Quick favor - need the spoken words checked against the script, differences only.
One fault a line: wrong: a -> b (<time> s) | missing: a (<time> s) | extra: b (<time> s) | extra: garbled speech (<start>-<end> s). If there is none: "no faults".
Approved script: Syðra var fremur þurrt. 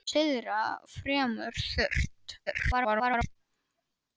missing: var (0.6 s)
extra: garbled speech (2.5-3.4 s)